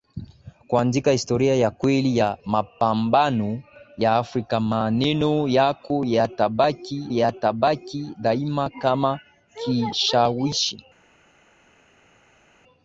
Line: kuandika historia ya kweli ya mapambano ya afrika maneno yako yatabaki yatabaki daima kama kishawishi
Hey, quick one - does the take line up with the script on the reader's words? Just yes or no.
yes